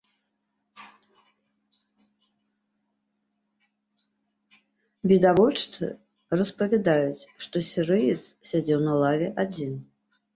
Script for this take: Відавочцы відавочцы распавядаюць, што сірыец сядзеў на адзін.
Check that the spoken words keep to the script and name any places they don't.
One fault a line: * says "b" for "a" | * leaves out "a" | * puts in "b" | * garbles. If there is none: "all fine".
* leaves out "відавочцы"
* puts in "лаве"